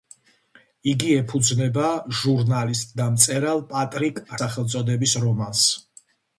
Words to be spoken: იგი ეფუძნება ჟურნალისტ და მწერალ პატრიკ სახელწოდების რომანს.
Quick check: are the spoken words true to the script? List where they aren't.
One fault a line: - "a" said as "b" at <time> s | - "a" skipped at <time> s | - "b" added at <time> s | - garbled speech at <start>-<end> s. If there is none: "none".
none